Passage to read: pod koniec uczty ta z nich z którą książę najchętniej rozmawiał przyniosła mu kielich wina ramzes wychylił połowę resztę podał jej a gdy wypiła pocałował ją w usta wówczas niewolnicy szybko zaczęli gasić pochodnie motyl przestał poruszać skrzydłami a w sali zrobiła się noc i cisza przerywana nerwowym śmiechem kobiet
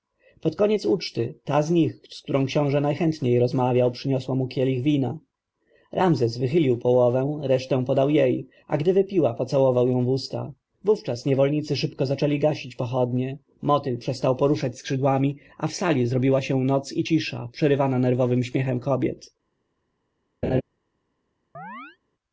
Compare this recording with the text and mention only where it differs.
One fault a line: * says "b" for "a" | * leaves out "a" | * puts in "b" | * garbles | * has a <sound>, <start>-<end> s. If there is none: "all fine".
* has a laugh, 20.4-20.6 s
* has a chirp, 21.5-22.0 s